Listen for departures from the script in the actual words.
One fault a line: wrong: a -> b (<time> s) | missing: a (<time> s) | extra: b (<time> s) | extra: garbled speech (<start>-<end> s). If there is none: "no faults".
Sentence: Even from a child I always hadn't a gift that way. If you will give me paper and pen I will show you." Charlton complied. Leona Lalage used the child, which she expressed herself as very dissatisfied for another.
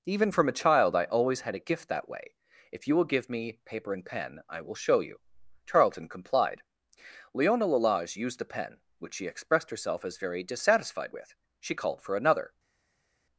wrong: hadn't -> had (1.4 s)
wrong: child -> pen (8.4 s)
extra: with She called (11.1 s)